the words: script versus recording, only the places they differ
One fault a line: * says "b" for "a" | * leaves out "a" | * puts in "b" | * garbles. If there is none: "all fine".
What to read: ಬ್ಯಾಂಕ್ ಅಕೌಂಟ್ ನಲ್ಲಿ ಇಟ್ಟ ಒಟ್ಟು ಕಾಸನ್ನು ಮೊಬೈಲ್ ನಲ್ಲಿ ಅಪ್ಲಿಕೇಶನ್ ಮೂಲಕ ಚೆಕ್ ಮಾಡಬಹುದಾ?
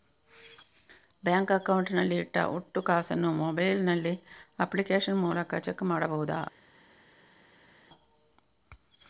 all fine